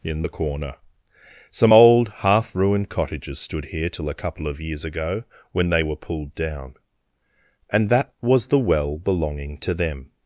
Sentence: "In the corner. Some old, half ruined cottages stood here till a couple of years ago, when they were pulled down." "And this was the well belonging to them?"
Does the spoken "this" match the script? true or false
false